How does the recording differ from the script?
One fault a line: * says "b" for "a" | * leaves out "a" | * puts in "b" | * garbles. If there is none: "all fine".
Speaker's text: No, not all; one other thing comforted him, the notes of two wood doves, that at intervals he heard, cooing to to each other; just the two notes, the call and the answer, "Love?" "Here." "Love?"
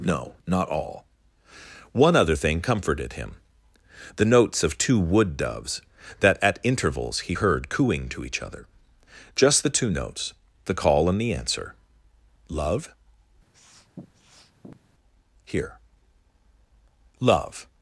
* leaves out "to"